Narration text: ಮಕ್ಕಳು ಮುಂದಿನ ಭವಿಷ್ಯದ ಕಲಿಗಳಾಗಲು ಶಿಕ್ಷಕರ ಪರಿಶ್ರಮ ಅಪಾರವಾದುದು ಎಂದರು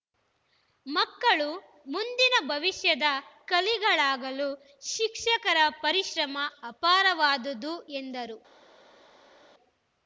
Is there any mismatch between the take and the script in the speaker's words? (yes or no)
no